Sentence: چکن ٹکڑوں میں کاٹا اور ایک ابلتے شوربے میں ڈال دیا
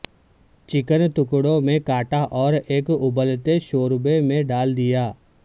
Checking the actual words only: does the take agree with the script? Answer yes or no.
yes